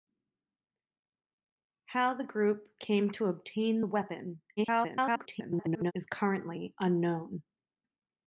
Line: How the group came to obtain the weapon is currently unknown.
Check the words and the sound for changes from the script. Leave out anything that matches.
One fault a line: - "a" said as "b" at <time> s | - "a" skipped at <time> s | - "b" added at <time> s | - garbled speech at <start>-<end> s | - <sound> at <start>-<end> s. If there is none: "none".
- garbled speech at 4.6-5.9 s